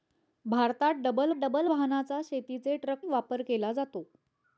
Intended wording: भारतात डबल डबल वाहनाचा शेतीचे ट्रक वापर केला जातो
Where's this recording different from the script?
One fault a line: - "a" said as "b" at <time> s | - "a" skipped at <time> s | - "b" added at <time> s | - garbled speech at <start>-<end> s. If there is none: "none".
none